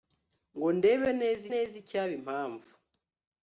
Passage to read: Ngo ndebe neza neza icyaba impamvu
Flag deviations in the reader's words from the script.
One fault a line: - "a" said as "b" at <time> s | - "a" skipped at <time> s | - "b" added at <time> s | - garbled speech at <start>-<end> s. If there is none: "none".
none